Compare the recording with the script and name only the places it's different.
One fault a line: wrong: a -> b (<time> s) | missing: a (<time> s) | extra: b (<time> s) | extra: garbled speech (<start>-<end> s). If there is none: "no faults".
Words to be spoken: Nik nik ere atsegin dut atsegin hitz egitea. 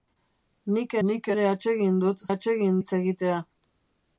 no faults